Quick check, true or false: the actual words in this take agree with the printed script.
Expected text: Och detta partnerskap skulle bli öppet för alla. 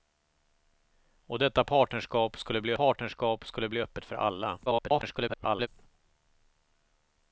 false